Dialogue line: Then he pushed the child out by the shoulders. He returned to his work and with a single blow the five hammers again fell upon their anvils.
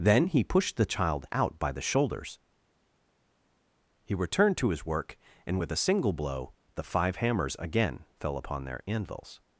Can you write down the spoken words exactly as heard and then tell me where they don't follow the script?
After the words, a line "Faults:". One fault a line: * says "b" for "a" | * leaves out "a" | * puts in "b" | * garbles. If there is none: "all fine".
Then he pushed the child out by the shoulders. He returned to his work and with a single blow the five hammers again fell upon their anvils.
Faults:
all fine